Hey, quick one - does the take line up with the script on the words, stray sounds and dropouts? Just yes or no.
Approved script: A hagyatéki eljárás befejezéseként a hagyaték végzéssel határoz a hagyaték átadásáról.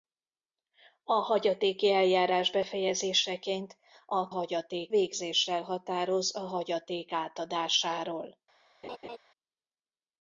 no